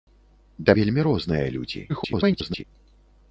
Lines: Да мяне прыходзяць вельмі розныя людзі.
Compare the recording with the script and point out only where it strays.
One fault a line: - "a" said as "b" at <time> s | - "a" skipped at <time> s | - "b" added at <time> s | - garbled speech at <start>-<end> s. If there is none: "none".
- "мяне прыходзяць" skipped at 0.8 s
- garbled speech at 1.9-2.6 s